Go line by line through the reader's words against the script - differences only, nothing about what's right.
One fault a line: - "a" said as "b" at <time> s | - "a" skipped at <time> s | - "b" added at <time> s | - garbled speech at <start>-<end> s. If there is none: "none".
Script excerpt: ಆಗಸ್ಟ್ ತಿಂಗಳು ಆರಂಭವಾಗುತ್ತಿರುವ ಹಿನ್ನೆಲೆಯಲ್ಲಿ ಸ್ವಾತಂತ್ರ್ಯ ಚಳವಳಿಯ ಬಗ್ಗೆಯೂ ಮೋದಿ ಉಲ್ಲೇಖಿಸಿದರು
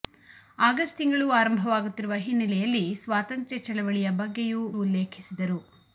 - "ಮೋದಿ" skipped at 4.6 s